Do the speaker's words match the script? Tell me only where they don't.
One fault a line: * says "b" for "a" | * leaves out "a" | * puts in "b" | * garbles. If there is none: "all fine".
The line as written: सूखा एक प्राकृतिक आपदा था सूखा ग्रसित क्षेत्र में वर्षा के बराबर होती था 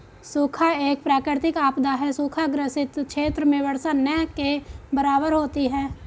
* says "है" for "था"
* puts in "न"
* says "है" for "था"